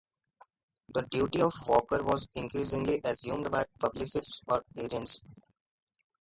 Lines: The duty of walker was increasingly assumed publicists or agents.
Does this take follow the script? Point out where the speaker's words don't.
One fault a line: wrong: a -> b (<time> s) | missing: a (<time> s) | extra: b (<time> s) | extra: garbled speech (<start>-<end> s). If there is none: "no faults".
extra: by (3.5 s)